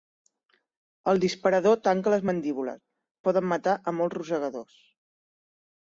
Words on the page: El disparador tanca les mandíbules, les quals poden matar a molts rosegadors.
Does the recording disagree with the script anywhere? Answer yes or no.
yes